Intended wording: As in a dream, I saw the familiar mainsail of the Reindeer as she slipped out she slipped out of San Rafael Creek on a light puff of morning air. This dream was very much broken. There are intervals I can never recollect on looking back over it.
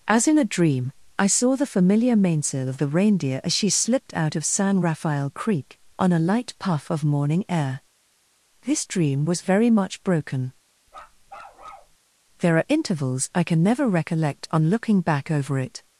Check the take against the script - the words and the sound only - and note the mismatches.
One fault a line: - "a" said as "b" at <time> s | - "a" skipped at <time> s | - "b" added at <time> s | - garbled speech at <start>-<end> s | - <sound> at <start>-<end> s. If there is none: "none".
- "she slipped out" skipped at 4.3 s
- bark at 10.9-12.0 s